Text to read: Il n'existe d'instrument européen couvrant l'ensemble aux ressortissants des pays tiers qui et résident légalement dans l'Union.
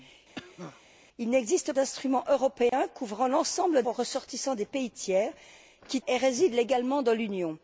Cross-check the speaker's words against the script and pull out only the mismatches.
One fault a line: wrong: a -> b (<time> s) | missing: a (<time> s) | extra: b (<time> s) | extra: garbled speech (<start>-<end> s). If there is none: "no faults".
no faults